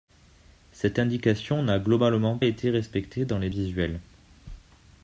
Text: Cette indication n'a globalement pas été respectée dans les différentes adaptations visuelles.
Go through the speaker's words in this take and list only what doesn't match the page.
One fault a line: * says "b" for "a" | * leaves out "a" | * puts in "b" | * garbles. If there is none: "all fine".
* leaves out "pas"
* leaves out "différentes adaptations"